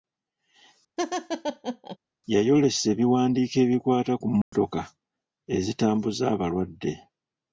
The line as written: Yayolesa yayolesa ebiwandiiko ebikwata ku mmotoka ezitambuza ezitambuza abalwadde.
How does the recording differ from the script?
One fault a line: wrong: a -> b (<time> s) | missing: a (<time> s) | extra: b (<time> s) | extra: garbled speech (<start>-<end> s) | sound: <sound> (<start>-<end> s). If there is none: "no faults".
sound: laugh (1.0-2.0 s)
missing: yayolesa (2.9 s)
sound: dropout (4.4-4.5 s)
missing: ezitambuza (6.2 s)